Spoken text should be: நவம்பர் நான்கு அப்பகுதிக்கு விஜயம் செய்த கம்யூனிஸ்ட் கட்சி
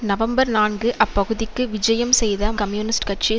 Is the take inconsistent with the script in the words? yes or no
no